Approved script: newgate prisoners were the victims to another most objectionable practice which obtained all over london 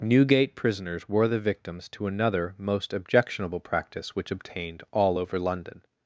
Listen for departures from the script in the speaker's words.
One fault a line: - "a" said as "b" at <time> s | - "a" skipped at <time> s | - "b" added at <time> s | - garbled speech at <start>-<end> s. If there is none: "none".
none